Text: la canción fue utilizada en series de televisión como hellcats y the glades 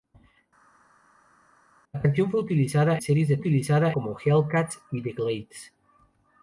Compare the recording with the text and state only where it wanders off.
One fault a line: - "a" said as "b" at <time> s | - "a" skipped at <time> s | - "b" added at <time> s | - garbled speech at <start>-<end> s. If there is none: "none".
- "en" skipped at 3.0 s
- "televisión" said as "utilizada" at 3.4 s